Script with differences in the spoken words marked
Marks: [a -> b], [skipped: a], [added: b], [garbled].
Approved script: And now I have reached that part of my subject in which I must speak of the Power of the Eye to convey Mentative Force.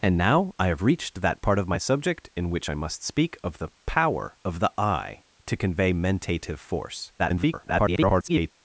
And now I have reached that part of my subject in which I must speak of the Power of the Eye to convey Mentative Force. [garbled]